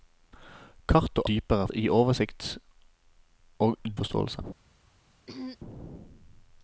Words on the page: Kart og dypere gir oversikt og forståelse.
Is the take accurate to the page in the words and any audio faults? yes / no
no